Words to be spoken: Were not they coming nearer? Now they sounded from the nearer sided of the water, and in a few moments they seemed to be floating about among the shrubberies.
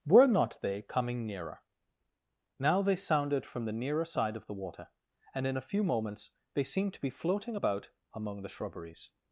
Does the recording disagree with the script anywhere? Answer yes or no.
yes